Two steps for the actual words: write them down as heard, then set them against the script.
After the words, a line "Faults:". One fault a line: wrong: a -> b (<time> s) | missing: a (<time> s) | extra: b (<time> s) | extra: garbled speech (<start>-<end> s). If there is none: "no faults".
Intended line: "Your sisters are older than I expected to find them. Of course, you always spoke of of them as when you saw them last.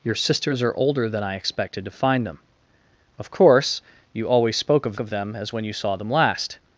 "Your sisters are older than I expected to find them. Of course, you always spoke of of them as when you saw them last.
Faults:
no faults